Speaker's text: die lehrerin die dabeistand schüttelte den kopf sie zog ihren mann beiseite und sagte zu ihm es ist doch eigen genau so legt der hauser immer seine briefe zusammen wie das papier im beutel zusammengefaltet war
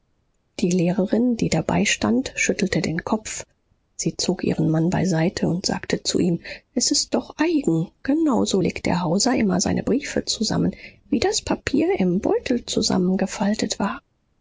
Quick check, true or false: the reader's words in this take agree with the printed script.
true